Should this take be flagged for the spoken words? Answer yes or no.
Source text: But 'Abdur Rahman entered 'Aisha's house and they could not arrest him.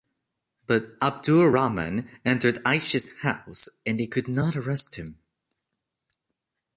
no